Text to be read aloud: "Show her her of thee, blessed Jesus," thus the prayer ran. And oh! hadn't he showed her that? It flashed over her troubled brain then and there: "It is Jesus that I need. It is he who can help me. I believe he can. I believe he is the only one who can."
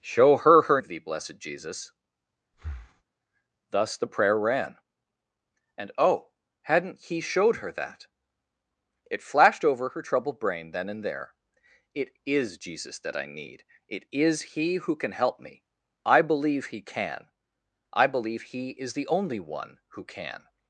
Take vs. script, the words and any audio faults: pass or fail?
fail